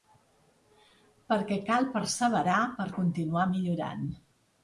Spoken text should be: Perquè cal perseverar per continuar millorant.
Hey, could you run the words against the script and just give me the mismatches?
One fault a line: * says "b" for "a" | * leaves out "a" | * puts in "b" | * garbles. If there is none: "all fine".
all fine